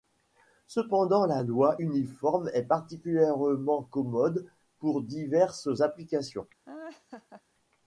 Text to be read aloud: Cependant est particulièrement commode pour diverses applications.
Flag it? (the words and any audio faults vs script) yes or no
yes